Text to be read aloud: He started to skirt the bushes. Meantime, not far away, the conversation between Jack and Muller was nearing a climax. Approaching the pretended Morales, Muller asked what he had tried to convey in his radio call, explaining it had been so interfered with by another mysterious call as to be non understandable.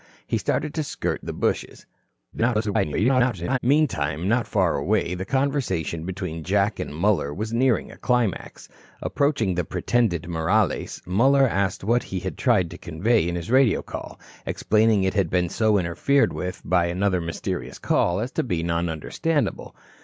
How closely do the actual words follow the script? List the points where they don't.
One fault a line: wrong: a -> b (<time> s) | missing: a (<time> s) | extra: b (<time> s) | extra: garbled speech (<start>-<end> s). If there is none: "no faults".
extra: garbled speech (2.3-3.6 s)